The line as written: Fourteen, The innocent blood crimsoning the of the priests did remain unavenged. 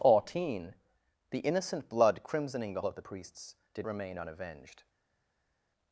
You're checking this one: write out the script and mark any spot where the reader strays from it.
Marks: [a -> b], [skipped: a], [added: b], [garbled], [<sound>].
Fourteen, The innocent blood crimsoning the of the priests did remain unavenged.